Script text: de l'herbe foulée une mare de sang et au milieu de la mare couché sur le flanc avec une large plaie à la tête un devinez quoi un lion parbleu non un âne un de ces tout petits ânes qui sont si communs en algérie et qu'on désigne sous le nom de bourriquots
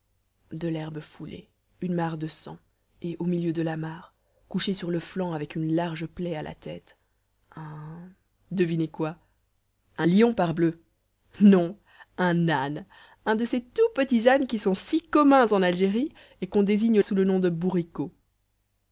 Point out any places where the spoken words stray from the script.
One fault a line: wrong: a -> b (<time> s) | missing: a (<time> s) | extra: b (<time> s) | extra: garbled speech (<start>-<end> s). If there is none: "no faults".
no faults